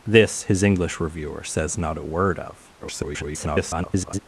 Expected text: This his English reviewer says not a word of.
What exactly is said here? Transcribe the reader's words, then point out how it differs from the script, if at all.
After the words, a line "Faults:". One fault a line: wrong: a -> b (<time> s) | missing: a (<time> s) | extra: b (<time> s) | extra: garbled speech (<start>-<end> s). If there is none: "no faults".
This his English reviewer says not a word of. [garbled]
Faults:
extra: garbled speech (2.8-4.2 s)